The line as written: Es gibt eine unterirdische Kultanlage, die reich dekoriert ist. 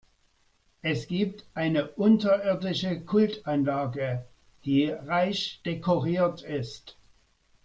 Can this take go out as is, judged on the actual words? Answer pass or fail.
pass